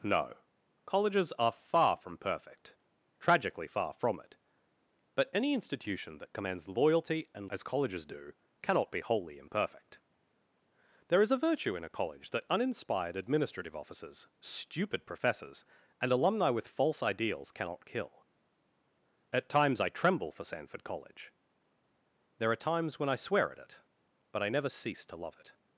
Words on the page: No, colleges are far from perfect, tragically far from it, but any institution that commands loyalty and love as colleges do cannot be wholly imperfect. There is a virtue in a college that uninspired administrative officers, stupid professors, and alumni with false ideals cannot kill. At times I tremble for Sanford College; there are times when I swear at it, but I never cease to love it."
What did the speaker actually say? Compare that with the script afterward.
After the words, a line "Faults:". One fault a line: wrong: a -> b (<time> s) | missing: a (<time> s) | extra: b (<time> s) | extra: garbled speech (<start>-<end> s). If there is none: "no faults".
No, colleges are far from perfect, tragically far from it, but any institution that commands loyalty and as colleges do cannot be wholly imperfect. There is a virtue in a college that uninspired administrative officers, stupid professors, and alumni with false ideals cannot kill. At times I tremble for Sanford College; there are times when I swear at it, but I never cease to love it."
Faults:
missing: love (7.5 s)